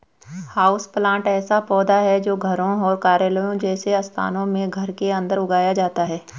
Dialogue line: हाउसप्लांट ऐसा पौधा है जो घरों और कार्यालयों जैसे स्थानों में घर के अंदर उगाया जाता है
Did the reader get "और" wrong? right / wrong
right